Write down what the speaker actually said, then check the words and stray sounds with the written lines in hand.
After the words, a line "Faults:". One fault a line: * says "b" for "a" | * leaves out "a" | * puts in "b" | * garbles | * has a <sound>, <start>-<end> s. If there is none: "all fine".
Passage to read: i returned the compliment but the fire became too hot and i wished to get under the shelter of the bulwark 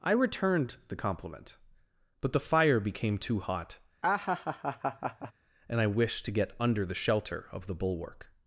i returned the compliment but the fire became too hot and i wished to get under the shelter of the bulwark
Faults:
* has a laugh, 4.0-5.3 s